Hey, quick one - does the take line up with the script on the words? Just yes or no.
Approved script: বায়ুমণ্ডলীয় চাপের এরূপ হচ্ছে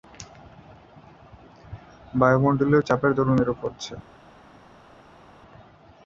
no